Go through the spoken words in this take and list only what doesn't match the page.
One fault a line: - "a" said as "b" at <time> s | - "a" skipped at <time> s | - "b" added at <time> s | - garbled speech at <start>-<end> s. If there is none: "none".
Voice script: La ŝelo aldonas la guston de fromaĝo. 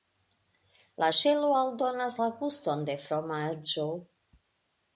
none